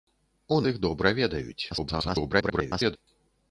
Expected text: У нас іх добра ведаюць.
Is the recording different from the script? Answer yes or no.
yes